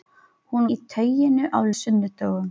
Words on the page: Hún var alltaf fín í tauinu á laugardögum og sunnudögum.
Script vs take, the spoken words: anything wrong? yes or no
yes